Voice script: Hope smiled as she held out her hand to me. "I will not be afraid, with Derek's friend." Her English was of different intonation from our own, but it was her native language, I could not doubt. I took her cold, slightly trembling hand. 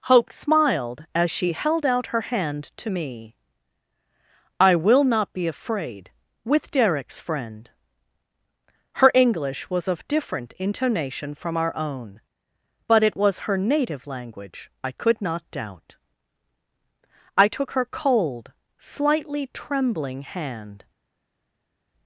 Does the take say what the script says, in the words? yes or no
yes